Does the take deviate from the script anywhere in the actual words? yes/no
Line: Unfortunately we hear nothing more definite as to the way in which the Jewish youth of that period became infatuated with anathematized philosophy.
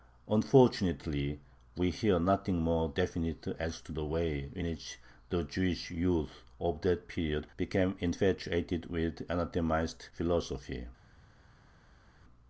no